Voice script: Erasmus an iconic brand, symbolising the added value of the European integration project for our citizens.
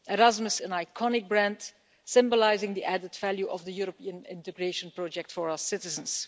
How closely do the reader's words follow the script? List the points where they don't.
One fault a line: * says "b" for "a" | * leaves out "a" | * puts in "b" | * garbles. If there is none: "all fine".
all fine